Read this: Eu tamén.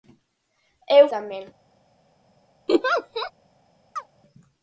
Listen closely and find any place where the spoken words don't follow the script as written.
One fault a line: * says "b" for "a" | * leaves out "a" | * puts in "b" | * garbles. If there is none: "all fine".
all fine